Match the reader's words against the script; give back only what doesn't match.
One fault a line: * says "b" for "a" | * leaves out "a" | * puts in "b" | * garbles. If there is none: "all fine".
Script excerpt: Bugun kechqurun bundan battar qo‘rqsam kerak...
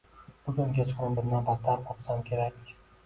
all fine